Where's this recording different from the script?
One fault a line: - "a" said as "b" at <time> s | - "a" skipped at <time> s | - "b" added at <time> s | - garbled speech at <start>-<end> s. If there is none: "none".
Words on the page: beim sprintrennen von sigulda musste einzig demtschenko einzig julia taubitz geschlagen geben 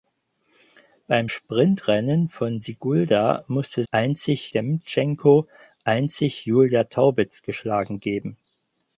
none